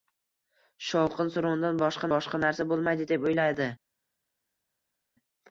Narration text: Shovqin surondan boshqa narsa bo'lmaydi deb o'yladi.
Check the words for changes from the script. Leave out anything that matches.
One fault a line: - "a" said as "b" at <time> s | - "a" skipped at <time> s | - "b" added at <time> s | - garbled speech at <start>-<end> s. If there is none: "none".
- "boshqa" added at 2.1 s